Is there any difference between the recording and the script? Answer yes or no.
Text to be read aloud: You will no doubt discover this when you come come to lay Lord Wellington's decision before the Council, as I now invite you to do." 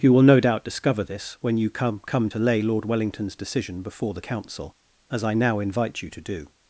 no